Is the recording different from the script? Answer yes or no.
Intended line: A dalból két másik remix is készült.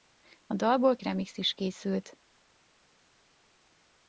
yes